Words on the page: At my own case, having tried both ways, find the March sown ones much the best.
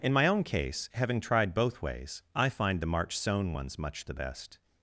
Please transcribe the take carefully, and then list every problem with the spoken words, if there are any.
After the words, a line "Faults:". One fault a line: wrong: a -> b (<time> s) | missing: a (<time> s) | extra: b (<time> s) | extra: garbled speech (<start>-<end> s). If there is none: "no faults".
In my own case, having tried both ways, I find the March sown ones much the best.
Faults:
wrong: At -> In (0.0 s)
extra: I (2.3 s)